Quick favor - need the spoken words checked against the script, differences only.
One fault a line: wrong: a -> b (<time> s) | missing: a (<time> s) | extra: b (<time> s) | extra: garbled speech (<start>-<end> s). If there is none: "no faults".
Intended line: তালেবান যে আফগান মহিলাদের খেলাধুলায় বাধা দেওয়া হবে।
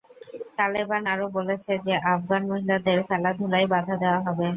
extra: আরও বলেছে (1.1 s)